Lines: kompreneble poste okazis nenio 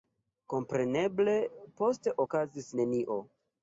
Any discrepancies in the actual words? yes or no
no